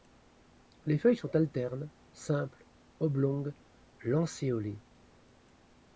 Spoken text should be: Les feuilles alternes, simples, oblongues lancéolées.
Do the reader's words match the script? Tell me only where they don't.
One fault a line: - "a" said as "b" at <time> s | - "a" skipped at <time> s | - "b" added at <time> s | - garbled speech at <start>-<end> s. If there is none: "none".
- "sont" added at 1.1 s